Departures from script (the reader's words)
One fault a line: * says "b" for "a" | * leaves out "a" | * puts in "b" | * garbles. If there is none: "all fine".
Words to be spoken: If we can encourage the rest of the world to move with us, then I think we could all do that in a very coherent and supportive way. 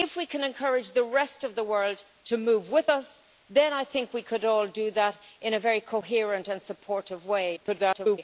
* garbles